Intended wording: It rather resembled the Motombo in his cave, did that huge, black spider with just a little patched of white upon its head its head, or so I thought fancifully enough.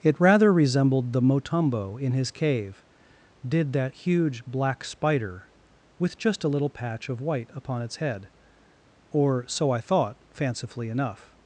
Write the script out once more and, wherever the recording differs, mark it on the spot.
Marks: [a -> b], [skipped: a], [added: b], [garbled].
It rather resembled the Motombo in his cave, did that huge, black spider with just a little [patched -> patch] of white upon its head [skipped: its head,] or so I thought fancifully enough.